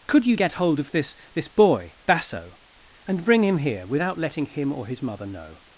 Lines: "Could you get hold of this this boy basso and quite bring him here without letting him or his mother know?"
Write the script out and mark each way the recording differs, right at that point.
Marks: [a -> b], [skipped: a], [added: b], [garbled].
"Could you get hold of this this boy basso and [skipped: quite] bring him here without letting him or his mother know?"